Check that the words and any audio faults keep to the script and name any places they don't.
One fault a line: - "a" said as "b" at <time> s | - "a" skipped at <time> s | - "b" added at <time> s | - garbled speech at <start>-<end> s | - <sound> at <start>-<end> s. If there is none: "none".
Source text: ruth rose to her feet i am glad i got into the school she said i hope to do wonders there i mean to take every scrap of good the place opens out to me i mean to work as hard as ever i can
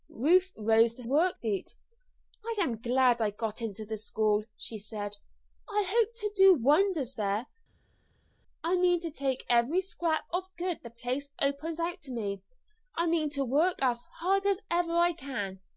- "her" said as "work" at 1.0 s